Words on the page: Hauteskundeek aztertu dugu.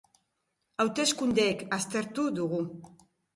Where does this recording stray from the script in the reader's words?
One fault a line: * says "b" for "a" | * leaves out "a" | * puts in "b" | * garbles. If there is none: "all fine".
all fine